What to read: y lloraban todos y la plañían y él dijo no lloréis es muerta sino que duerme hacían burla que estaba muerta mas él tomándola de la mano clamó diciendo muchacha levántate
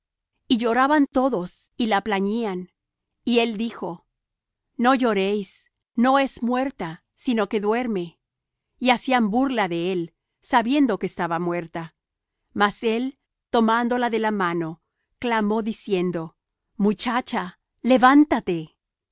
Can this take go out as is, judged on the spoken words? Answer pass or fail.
fail